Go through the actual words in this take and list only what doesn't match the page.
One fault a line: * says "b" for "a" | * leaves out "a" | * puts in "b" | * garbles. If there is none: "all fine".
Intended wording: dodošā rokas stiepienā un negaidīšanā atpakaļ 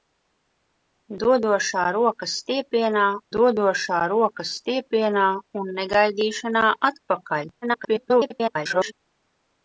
* puts in "dodošā rokas stiepienā"
* garbles